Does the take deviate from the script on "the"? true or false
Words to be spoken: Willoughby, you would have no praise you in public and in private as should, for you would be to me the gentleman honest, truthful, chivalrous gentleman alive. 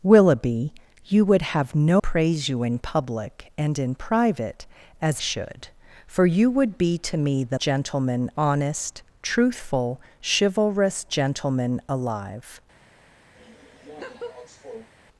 false